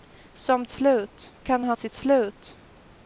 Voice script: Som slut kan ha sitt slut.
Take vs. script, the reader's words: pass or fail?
pass